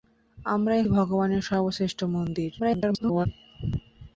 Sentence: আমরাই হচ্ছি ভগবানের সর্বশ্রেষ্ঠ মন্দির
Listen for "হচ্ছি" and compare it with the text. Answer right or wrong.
wrong